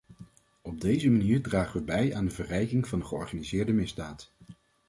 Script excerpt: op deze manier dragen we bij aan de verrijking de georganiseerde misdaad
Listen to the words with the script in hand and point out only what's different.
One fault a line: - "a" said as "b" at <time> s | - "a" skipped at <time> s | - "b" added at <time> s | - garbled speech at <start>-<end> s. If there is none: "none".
- "van" added at 2.9 s